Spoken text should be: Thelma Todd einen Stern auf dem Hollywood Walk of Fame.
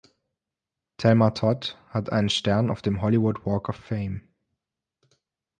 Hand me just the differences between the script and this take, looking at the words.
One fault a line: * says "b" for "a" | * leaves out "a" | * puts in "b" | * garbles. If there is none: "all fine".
* puts in "hat"